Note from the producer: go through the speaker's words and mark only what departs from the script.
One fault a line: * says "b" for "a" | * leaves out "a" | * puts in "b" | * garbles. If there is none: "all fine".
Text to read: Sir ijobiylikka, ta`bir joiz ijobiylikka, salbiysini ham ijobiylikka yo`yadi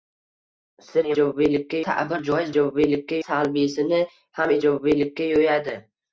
all fine